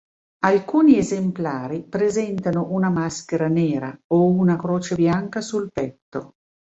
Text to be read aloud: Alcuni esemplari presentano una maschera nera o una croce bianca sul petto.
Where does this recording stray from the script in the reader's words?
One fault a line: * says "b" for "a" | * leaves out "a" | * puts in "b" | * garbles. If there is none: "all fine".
all fine